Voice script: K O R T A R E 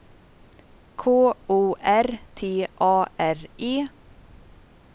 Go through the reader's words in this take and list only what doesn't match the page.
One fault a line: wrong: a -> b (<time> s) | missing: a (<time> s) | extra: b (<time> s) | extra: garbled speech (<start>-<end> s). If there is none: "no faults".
no faults